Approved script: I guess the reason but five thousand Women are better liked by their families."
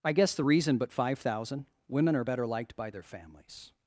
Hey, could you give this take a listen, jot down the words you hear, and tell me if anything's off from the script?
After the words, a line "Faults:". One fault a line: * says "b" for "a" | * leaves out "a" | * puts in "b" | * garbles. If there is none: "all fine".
I guess the reason but five thousand Women are better liked by their families."
Faults:
all fine